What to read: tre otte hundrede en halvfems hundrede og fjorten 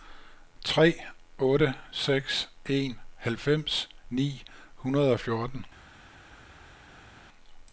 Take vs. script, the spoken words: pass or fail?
fail